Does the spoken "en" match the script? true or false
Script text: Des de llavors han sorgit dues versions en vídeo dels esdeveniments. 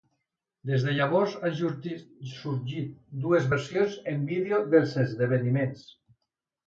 true